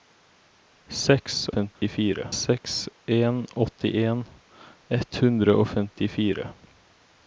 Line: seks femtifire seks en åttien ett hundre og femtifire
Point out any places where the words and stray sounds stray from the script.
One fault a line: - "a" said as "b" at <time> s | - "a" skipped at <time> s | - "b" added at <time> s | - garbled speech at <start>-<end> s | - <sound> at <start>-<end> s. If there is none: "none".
- dropout at 1.7-1.8 s